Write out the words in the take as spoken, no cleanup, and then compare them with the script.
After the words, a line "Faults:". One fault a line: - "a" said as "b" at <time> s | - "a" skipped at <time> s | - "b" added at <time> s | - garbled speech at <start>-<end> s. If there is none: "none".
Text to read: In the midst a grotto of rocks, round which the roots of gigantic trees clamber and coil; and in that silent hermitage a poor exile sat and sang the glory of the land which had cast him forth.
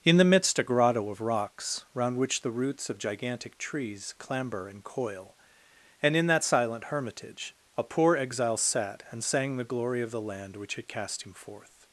In the midst a grotto of rocks, round which the roots of gigantic trees clamber and coil; and in that silent hermitage a poor exile sat and sang the glory of the land which had cast him forth.
Faults:
none